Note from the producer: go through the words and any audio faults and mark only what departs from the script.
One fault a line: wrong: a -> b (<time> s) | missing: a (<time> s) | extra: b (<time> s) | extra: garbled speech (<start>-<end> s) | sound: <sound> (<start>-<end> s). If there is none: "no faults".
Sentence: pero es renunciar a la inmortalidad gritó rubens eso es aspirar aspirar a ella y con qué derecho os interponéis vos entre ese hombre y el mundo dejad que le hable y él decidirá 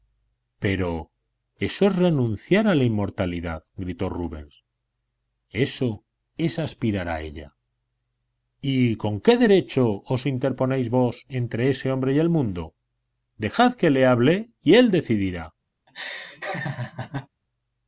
extra: eso (1.6 s)
missing: aspirar (7.1 s)
sound: laugh (15.9-17.3 s)